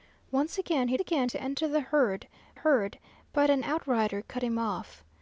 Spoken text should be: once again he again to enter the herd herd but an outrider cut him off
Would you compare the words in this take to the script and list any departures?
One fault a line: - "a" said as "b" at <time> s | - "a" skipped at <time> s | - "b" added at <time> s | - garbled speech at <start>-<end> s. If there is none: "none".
none